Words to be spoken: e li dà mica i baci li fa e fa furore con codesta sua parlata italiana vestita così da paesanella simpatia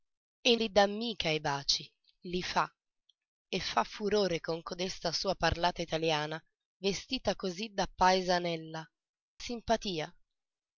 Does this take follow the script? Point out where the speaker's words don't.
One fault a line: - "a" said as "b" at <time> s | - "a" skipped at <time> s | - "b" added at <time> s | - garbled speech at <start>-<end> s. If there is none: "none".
none